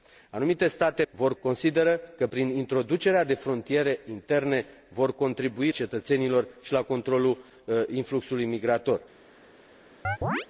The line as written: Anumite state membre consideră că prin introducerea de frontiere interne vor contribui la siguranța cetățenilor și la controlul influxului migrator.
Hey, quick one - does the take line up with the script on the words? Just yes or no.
no